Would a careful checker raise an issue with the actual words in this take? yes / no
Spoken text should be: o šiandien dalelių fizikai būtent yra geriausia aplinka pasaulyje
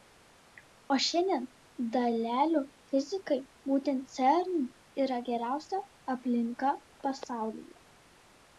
yes